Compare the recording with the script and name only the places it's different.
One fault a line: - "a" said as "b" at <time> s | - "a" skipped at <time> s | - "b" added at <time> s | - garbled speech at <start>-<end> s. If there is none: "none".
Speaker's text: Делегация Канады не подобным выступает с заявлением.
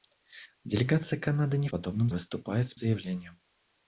none